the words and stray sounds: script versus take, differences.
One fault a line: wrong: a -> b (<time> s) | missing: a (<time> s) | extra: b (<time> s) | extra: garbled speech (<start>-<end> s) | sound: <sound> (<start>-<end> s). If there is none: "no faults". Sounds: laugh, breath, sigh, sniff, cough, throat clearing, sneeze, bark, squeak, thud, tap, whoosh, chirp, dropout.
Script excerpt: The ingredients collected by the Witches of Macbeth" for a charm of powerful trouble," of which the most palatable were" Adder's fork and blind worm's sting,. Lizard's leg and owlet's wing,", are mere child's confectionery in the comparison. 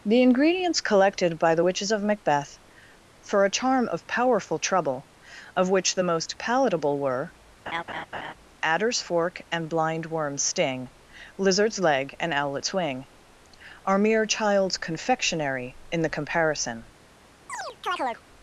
sound: laugh (7.7-8.3 s)
sound: chirp (17.5-18.2 s)